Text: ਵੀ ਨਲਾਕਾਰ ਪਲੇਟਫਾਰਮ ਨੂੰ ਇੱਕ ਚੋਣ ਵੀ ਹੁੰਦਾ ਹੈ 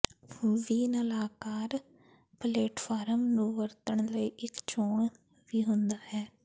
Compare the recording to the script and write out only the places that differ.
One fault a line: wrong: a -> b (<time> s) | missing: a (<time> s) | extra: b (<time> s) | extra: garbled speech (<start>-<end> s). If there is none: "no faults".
extra: ਵਰਤਣ ਲਈ (3.5 s)